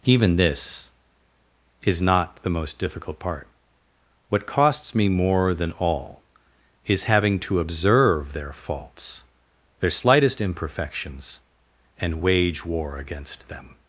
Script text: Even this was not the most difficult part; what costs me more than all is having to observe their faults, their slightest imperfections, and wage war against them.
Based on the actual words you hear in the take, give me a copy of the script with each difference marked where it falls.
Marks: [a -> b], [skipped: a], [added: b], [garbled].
Even this [was -> is] not the most difficult part; what costs me more than all is having to observe their faults, their slightest imperfections, and wage war against them.